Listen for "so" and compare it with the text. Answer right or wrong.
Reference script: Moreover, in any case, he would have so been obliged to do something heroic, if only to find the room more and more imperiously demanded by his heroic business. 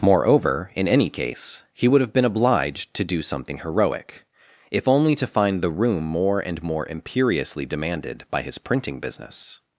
wrong